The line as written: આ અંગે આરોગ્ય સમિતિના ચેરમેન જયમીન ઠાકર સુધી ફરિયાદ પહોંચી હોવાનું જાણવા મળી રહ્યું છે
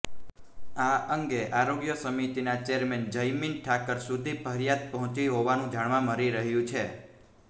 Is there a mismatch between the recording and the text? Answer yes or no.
no